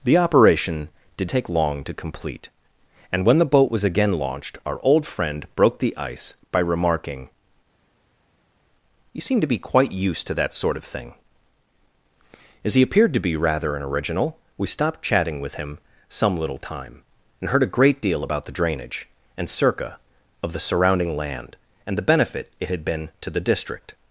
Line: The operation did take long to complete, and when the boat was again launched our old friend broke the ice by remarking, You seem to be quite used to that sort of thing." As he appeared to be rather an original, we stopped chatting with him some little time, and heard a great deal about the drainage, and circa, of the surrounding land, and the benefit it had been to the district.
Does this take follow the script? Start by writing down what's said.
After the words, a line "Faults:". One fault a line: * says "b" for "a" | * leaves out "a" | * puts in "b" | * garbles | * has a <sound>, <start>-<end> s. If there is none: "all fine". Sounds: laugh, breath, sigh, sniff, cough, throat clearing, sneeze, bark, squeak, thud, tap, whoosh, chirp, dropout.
The operation did take long to complete, and when the boat was again launched our old friend broke the ice by remarking, You seem to be quite used to that sort of thing." As he appeared to be rather an original, we stopped chatting with him some little time, and heard a great deal about the drainage, and circa, of the surrounding land, and the benefit it had been to the district.
Faults:
all fine